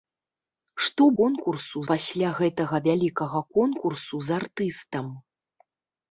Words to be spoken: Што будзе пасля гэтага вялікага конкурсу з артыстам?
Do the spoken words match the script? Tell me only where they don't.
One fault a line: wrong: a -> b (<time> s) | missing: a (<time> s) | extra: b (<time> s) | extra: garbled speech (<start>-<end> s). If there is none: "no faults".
wrong: будзе -> конкурсу (1.2 s)